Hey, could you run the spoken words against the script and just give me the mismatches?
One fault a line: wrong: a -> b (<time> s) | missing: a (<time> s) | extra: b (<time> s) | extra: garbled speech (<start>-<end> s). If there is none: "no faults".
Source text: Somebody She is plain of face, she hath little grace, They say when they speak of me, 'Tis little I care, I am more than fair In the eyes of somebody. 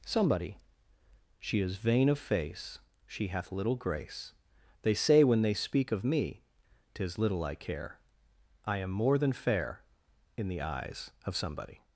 wrong: plain -> vain (1.8 s)